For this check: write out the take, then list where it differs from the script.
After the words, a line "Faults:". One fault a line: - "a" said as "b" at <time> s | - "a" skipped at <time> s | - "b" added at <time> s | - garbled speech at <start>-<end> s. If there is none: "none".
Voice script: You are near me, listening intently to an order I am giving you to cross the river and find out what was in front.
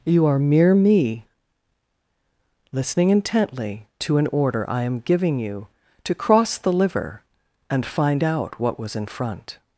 You are mere me, listening intently to an order I am giving you to cross the liver and find out what was in front.
Faults:
- "near" said as "mere" at 0.4 s
- "river" said as "liver" at 6.7 s